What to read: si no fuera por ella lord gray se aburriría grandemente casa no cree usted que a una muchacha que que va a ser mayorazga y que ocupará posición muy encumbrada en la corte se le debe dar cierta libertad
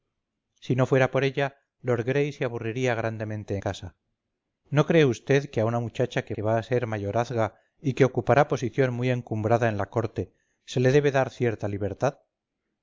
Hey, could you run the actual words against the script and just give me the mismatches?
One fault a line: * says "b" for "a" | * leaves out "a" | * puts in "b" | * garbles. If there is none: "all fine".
all fine